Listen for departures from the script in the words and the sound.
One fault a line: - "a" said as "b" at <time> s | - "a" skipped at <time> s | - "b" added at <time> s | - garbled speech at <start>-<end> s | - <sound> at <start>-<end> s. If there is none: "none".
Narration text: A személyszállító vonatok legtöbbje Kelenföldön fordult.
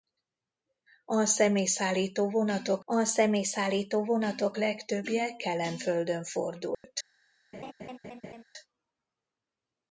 - "a személyszállító vonatok" added at 2.8 s
- dropout at 6.7-6.8 s
- laugh at 7.5-8.4 s